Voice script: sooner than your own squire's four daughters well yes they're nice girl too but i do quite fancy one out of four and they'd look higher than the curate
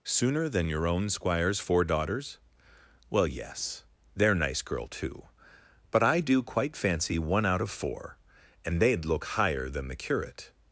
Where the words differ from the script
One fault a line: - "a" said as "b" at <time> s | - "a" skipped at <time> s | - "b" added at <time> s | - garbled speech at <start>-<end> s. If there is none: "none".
none